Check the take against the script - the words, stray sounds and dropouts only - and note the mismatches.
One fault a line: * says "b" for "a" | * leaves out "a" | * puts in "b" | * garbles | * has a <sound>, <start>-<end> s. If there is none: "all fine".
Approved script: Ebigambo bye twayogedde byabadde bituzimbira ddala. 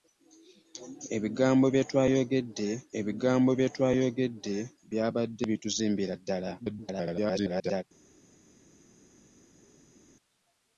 * puts in "ebigambo bye twayogedde"
* garbles